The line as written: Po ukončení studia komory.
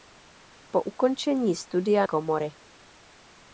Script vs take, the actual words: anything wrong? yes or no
no